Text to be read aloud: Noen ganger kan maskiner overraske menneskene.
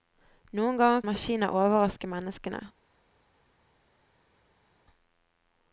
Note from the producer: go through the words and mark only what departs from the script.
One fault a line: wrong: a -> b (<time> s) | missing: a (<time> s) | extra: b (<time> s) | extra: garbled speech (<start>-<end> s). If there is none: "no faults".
missing: kan (1.0 s)